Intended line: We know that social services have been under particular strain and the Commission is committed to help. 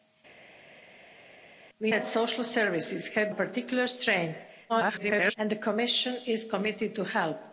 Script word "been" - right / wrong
wrong